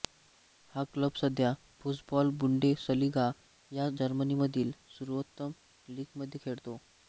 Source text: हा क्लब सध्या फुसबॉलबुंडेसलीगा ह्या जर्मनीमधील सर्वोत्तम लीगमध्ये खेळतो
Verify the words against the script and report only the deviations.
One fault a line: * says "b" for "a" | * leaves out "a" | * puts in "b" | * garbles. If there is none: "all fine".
all fine